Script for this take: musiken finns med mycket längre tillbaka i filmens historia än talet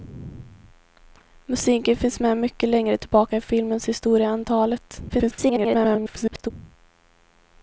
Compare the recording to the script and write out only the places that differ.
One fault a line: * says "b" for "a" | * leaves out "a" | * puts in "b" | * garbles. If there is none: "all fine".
* garbles